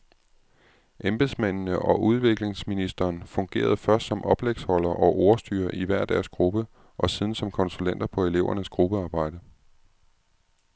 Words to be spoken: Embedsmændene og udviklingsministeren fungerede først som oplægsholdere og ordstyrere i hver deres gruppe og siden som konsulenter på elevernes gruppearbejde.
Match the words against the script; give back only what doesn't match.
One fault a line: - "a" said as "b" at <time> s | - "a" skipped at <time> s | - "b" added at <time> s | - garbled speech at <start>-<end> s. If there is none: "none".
none